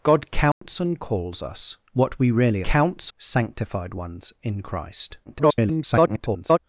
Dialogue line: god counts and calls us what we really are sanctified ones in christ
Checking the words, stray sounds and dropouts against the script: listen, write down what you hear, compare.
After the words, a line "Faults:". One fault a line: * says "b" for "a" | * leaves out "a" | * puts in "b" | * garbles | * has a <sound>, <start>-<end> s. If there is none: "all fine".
god counts and calls us what we really counts sanctified ones in christ [garbled]
Faults:
* has a dropout, 0.5-0.6 s
* says "counts" for "are"
* garbles